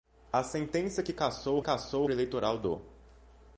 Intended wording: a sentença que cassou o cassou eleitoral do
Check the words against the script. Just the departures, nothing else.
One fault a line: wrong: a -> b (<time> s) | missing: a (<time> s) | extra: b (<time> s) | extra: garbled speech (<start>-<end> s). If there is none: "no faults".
no faults